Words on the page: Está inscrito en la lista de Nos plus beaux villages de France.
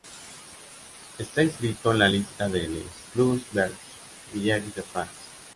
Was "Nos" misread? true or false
true